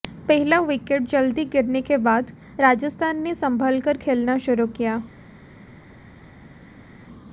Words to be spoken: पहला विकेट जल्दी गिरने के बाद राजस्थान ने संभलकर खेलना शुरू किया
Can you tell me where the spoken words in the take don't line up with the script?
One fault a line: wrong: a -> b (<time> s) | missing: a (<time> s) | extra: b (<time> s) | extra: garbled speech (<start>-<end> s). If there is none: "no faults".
no faults